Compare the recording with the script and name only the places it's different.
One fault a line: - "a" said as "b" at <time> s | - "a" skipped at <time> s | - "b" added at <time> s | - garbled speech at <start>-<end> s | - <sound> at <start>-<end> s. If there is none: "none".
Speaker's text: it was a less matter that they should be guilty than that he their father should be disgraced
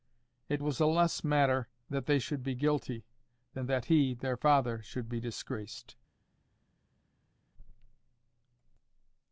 none